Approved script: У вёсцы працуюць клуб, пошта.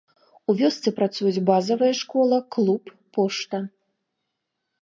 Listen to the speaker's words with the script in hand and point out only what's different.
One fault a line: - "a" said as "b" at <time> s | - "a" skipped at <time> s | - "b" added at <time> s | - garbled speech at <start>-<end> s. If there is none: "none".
- "базавая школа" added at 1.5 s